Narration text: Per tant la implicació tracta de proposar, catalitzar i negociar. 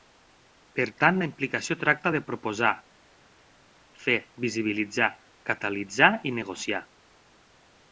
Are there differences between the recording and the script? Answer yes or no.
yes